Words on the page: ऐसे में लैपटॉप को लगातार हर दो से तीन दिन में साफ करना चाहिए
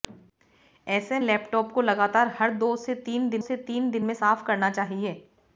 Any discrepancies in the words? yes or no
yes